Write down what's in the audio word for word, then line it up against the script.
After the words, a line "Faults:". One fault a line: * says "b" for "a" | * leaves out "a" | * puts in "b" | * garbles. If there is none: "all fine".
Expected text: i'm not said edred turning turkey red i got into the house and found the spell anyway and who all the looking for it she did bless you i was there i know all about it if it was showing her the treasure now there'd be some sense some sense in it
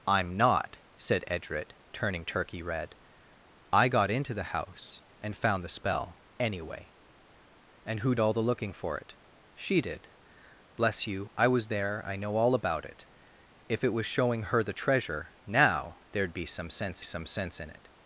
i'm not said edred turning turkey red i got into the house and found the spell anyway and who all the looking for it she did bless you i was there i know all about it if it was showing her the treasure now there'd be some sense some sense in it
Faults:
all fine